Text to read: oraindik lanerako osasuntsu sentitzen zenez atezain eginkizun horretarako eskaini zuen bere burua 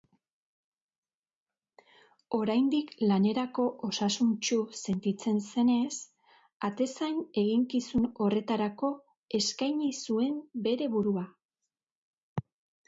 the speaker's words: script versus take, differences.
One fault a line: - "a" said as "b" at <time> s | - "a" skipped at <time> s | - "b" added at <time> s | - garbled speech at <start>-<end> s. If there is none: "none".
none